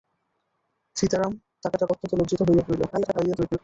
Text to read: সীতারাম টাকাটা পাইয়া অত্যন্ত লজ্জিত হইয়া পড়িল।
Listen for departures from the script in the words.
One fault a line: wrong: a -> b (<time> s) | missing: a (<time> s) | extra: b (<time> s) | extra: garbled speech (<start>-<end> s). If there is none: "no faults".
missing: পাইয়া (1.9 s)
extra: garbled speech (2.9-3.6 s)